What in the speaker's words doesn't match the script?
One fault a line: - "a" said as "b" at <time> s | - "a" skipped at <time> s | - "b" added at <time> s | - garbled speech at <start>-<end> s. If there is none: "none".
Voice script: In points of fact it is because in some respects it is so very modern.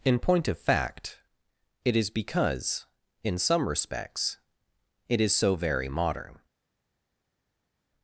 - "points" said as "point" at 0.2 s